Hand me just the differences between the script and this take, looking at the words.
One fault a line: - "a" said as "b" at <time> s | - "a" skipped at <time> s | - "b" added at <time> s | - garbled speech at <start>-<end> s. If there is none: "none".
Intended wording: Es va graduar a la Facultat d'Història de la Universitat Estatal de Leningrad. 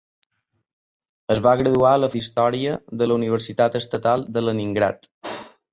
- "Facultat" skipped at 2.1 s